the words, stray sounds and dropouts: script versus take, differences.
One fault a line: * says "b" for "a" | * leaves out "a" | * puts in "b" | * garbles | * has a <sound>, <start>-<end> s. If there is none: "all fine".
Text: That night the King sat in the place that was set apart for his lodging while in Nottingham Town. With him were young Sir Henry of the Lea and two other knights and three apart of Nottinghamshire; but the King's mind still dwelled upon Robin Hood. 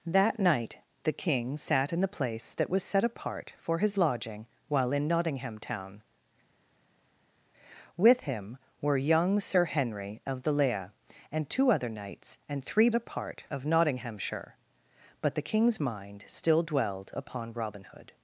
all fine